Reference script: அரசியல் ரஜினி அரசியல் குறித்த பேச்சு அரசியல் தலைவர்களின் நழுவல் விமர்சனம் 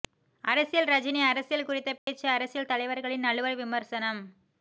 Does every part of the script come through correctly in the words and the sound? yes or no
no